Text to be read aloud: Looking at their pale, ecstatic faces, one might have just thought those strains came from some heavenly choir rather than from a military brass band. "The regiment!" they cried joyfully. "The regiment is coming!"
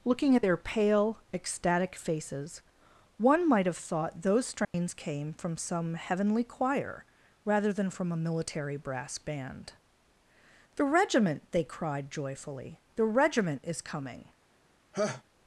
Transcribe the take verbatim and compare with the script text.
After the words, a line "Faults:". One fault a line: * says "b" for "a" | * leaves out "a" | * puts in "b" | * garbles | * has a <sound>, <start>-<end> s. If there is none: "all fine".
Looking at their pale, ecstatic faces, one might have thought those strains came from some heavenly choir rather than from a military brass band. "The regiment!" they cried joyfully. "The regiment is coming!"
Faults:
* leaves out "just"
* has a dropout, 4.6-4.7 s
* has a laugh, 14.9-15.2 s